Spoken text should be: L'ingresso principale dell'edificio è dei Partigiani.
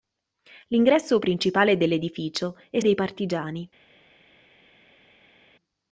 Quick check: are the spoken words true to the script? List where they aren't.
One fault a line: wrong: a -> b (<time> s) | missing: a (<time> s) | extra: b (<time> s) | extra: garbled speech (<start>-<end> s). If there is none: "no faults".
no faults